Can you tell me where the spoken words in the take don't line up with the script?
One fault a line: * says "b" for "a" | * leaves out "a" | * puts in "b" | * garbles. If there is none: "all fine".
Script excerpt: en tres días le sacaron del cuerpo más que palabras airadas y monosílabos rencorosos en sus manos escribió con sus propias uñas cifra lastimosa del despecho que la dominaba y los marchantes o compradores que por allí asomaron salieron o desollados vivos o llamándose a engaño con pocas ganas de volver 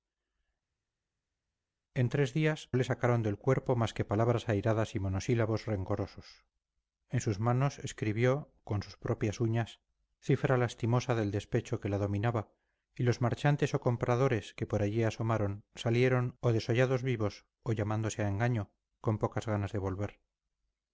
all fine